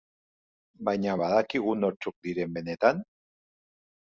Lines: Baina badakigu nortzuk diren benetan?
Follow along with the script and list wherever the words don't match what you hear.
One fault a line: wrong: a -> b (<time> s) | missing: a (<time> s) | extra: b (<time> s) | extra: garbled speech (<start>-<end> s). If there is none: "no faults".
no faults